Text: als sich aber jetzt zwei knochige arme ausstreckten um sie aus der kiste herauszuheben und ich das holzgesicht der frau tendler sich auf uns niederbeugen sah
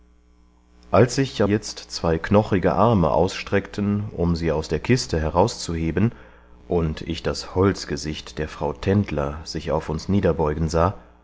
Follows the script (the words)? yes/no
no